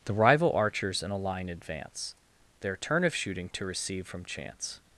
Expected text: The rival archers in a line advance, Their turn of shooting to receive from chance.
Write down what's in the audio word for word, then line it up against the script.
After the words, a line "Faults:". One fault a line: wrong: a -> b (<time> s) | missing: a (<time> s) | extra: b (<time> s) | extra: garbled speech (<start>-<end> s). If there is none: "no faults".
The rival archers in a line advance, Their turn of shooting to receive from chance.
Faults:
no faults